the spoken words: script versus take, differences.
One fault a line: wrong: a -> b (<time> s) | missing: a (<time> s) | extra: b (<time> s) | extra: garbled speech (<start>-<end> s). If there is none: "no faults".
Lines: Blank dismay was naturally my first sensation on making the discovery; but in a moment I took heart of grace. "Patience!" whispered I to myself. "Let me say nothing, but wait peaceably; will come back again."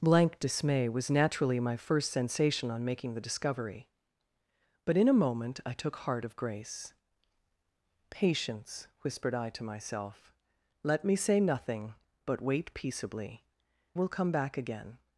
no faults